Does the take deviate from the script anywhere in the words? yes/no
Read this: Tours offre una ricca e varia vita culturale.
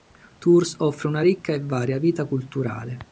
no